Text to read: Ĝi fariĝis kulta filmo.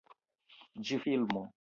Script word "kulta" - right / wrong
wrong